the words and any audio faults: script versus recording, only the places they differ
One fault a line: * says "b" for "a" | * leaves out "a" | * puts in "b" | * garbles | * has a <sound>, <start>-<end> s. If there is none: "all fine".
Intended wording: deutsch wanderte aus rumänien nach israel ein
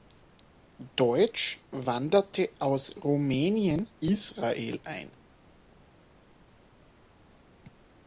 * leaves out "nach"